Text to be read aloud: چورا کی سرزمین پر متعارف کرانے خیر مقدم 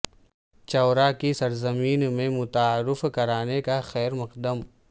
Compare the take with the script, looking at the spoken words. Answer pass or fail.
fail